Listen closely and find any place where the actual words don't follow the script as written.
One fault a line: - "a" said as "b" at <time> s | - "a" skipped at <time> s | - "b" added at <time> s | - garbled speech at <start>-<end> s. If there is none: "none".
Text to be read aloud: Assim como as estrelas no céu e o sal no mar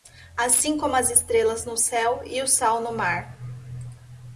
none